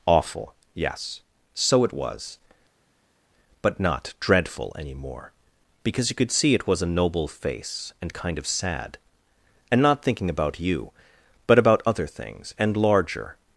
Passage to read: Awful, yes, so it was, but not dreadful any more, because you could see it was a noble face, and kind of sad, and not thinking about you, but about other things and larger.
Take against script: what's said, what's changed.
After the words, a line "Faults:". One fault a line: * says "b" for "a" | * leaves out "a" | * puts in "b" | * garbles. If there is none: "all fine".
Awful, yes, so it was, but not dreadful any more, because you could see it was a noble face, and kind of sad, and not thinking about you, but about other things and larger.
Faults:
all fine